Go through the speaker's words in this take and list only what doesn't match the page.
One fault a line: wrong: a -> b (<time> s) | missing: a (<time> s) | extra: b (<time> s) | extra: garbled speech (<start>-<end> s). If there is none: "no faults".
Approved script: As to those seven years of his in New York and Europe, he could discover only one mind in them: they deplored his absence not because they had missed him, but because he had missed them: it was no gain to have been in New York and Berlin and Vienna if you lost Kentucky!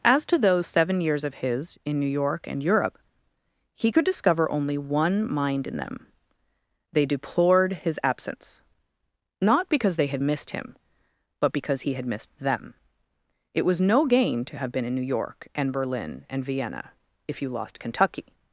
no faults